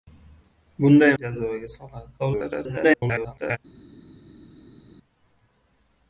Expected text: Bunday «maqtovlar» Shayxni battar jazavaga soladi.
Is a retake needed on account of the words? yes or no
yes